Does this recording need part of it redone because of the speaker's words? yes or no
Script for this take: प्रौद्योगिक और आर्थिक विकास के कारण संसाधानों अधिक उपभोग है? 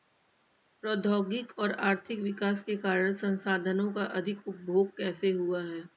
yes